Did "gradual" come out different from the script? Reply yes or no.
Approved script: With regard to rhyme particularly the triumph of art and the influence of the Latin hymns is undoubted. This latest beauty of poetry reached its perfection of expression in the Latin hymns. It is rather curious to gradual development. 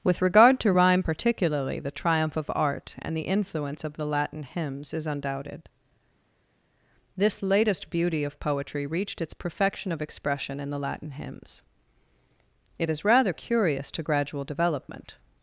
no